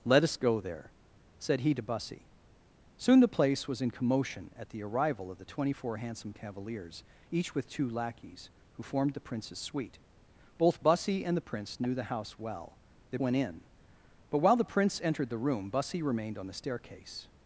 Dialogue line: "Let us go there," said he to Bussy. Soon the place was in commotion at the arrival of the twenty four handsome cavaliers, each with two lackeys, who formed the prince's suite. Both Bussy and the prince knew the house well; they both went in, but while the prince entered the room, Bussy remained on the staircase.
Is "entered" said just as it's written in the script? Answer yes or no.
yes